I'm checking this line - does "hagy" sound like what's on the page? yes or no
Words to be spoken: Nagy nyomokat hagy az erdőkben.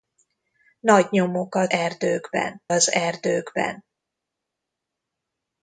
no